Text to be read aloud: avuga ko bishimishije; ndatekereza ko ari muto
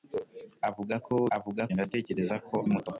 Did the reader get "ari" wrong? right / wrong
wrong